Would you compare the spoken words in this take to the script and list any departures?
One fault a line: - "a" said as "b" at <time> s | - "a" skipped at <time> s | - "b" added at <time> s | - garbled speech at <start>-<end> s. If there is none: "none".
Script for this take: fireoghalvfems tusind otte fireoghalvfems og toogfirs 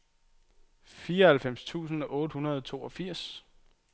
- "fireoghalvfems" said as "hundrede" at 2.3 s